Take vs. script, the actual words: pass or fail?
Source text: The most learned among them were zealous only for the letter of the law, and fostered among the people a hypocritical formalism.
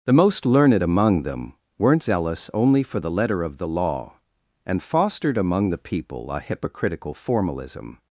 fail